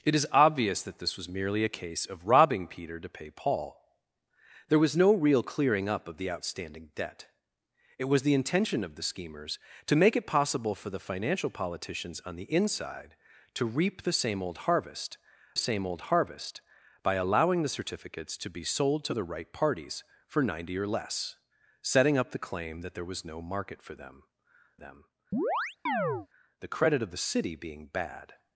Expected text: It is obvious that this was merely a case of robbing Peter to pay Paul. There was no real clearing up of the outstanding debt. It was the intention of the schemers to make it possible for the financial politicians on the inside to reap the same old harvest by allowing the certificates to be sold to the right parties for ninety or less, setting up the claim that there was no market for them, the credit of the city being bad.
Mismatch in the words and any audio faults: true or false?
true